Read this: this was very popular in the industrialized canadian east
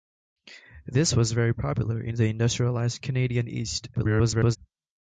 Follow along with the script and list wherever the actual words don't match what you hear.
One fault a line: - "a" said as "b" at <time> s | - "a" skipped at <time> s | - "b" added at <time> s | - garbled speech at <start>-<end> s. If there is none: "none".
- garbled speech at 3.9-4.6 s